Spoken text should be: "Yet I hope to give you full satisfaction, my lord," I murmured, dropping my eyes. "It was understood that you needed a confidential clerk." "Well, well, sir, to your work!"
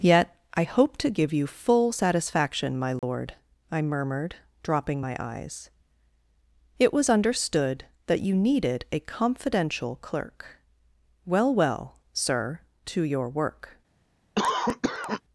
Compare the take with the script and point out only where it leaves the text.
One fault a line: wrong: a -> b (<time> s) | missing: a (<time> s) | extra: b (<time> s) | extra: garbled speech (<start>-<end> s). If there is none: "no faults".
no faults